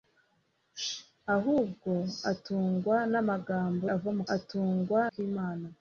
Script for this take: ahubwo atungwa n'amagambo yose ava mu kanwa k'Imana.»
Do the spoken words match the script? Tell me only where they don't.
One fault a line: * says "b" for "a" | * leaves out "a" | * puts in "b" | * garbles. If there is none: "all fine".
* leaves out "yose"
* says "atungwa" for "kanwa"